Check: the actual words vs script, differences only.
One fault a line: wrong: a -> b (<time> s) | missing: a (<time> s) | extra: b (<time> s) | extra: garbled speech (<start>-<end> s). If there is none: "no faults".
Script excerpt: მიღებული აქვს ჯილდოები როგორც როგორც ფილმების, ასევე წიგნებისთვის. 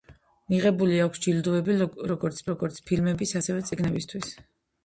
no faults